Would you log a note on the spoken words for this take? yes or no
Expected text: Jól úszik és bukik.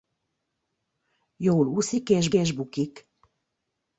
yes